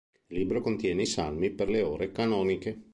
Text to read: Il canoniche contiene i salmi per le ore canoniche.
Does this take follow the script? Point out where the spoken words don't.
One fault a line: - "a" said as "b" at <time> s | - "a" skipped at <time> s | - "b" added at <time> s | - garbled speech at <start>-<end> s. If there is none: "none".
- "canoniche" said as "libro" at 0.4 s